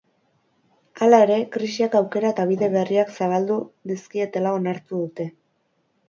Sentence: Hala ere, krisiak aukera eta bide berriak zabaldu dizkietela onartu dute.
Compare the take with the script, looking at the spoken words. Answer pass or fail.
pass